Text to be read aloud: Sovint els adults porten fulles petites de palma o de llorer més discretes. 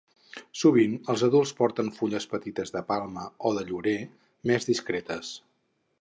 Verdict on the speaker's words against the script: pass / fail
pass